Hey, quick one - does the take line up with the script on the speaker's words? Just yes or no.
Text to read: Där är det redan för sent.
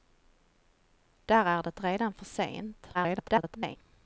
no